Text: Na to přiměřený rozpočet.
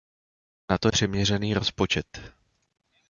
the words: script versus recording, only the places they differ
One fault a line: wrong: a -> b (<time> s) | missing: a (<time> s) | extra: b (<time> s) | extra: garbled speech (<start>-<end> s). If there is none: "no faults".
no faults